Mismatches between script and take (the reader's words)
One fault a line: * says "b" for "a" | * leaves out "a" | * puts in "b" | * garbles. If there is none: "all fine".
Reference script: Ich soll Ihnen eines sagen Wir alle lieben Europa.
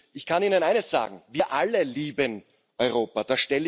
* says "kann" for "soll"